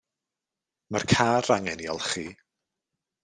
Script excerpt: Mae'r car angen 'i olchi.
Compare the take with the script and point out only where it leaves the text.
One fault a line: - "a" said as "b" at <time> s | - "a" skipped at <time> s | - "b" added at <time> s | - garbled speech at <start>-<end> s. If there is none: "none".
none